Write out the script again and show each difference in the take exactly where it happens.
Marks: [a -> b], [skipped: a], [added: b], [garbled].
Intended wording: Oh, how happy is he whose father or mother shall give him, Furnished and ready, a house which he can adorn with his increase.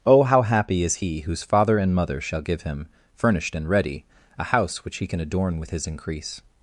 Oh, how happy is he whose father [or -> and] mother shall give him, Furnished and ready, a house which he can adorn with his increase.